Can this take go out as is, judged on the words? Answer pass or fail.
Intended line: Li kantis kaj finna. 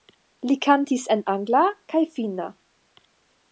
fail